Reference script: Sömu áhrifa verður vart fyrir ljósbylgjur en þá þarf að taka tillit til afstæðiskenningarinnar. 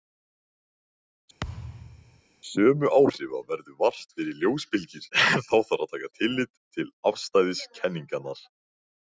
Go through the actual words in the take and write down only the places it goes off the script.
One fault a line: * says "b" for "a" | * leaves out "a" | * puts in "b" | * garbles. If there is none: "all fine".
all fine